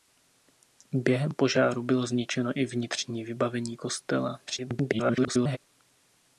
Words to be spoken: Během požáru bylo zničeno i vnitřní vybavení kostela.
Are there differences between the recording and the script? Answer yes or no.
yes